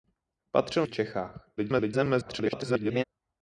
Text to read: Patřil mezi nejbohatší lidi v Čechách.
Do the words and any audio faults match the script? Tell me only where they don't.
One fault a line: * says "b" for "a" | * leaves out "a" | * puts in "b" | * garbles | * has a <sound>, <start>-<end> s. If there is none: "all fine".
* leaves out "mezi nejbohatší lidi"
* garbles